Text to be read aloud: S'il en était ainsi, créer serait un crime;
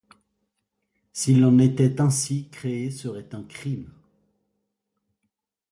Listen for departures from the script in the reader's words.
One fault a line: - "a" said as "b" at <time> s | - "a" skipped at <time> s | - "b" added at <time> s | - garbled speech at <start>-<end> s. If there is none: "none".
none